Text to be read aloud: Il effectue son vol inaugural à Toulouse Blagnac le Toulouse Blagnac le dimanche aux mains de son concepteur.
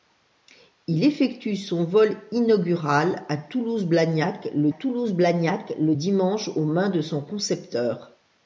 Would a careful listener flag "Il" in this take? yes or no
no